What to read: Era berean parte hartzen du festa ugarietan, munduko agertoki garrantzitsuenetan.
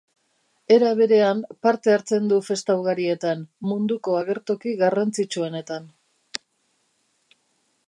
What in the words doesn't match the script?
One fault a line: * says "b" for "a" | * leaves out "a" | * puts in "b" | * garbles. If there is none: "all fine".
all fine